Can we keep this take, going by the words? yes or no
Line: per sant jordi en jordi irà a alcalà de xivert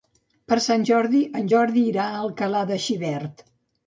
yes